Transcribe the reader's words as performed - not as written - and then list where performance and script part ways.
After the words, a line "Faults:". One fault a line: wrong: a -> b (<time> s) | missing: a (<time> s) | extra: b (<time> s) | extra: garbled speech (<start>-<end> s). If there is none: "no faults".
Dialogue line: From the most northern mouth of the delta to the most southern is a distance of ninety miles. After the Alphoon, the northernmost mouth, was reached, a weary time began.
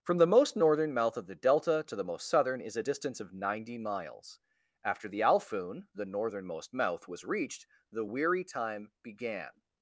From the most northern mouth of the delta to the most southern is a distance of ninety miles. After the Alphoon, the northernmost mouth, was reached, the weary time began.
Faults:
wrong: a -> the (7.9 s)